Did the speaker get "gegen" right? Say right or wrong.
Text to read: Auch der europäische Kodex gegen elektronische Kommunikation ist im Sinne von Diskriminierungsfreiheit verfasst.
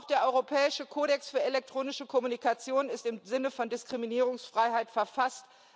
wrong